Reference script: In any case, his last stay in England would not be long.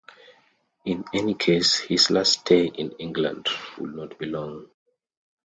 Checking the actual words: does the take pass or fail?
pass